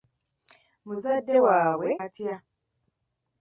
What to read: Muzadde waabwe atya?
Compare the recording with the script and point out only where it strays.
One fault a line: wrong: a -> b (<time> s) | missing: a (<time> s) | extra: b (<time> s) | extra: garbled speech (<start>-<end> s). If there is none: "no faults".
no faults